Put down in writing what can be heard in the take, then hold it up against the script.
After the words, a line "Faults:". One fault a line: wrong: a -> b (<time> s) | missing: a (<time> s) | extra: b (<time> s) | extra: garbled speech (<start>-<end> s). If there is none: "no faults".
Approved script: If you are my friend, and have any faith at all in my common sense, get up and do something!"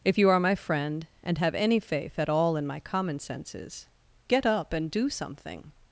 If you are my friend, and have any faith at all in my common senses, get up and do something!"
Faults:
wrong: sense -> senses (3.2 s)